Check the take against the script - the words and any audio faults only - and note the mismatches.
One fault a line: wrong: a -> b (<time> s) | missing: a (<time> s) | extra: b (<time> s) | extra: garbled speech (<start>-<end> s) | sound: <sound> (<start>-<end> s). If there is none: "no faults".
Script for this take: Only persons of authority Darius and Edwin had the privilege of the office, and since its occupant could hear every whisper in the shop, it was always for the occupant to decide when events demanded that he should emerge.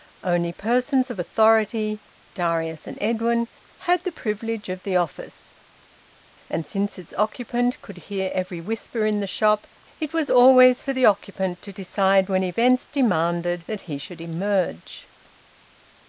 no faults